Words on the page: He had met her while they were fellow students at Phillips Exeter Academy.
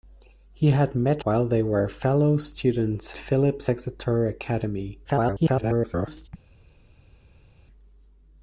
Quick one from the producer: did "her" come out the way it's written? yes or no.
no